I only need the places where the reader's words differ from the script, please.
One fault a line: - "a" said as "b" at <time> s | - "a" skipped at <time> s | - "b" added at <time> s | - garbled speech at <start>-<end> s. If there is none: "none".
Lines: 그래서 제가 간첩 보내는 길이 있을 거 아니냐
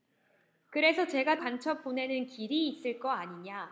none